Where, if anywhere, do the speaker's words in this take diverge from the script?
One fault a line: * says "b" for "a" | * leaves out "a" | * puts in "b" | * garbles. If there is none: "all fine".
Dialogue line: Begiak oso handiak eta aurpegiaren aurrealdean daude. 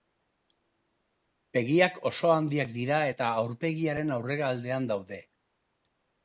* puts in "dira"